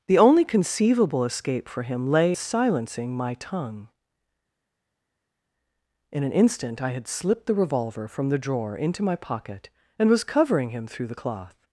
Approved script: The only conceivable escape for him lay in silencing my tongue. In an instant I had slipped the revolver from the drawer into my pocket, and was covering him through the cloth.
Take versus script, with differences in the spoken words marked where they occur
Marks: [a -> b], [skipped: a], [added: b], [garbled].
The only conceivable escape for him lay [skipped: in] silencing my tongue. In an instant I had slipped the revolver from the drawer into my pocket, and was covering him through the cloth.